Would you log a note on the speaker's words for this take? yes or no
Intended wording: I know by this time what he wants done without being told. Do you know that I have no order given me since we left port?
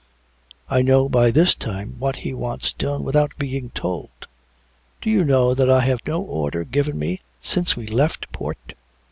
no